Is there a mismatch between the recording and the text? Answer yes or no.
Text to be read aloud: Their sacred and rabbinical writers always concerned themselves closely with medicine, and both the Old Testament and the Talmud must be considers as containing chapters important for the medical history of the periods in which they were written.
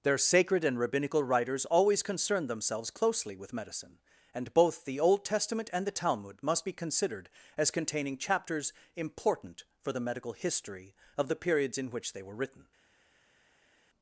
yes